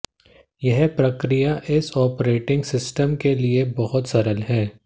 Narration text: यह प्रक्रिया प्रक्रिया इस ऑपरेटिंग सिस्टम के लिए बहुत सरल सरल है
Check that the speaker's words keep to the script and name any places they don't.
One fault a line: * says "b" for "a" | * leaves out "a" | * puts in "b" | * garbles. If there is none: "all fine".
* leaves out "प्रक्रिया"
* leaves out "सरल"